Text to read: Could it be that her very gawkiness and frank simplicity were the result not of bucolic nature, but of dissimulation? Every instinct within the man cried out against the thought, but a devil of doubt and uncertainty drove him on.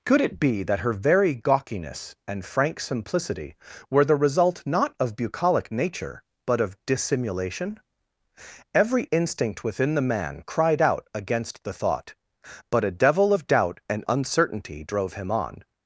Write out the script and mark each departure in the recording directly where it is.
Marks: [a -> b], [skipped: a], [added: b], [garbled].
Could it be that her very gawkiness and frank simplicity were the result not of bucolic nature, but of dissimulation? Every instinct within the man cried out against the thought, but a devil of doubt and uncertainty drove him on.